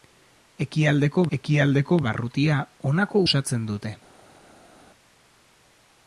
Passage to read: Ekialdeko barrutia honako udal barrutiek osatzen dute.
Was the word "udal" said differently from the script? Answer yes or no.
yes